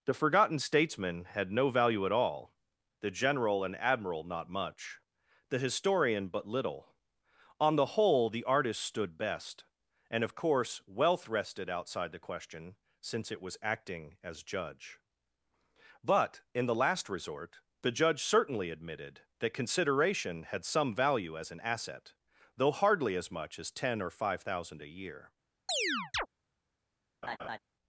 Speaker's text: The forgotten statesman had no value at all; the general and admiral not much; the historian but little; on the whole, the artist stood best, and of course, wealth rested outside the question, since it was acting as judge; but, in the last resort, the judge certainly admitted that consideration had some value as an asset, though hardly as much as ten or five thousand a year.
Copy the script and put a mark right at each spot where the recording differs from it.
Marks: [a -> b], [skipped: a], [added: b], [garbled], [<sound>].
The forgotten statesman had no value at all; the general and admiral not much; the historian but little; on the whole, the artist stood best, and of course, wealth rested outside the question, since it was acting as judge; but, in the last resort, the judge certainly admitted that consideration had some value as an asset, though hardly as much as ten or five thousand a year. [chirp] [laugh]